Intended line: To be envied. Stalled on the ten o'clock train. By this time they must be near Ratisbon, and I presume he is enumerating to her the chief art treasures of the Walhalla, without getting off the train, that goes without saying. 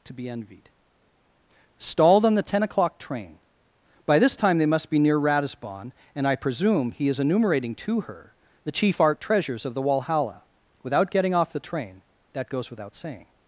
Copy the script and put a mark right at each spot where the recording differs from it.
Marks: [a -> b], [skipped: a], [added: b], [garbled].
To be envied. Stalled on the ten o'clock train. By this time they must be near Ratisbon, and I presume he is enumerating to her the chief art treasures of the Walhalla, without getting off the train, that goes without saying.